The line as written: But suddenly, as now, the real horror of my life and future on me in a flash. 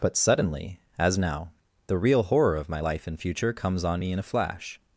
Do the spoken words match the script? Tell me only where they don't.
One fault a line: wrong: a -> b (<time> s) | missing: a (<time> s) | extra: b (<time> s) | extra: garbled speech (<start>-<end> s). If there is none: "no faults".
extra: comes (3.5 s)